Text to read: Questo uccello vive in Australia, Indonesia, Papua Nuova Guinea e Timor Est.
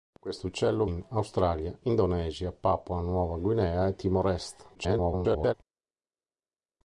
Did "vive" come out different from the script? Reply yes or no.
yes